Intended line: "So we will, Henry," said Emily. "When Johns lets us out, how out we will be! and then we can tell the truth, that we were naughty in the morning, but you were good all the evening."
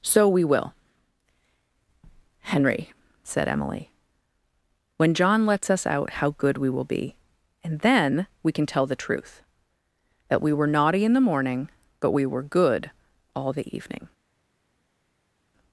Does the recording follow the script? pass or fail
fail